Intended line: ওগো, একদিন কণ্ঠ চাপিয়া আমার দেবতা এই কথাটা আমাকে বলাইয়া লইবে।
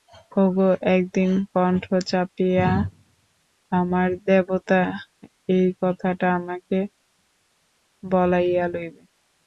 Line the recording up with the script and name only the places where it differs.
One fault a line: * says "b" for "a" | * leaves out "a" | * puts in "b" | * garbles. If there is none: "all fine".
all fine